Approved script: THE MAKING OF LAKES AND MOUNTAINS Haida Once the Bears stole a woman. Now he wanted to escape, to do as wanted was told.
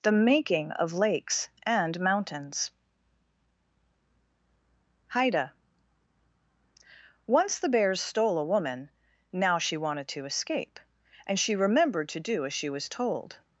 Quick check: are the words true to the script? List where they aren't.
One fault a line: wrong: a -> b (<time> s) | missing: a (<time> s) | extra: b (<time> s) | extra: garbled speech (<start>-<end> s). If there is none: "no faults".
wrong: he -> she (9.6 s)
extra: and she remembered (11.3 s)
wrong: wanted -> she (12.5 s)